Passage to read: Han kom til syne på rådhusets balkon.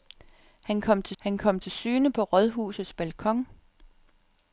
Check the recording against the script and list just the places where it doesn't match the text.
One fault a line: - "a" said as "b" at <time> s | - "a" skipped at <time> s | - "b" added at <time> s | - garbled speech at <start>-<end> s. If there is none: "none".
- "han kom til" added at 1.2 s